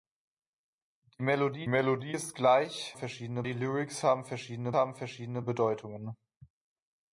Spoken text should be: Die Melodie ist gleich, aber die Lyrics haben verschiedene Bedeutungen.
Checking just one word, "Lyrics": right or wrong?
right